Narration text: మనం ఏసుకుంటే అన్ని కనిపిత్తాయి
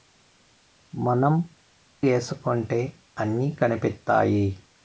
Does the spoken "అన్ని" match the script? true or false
true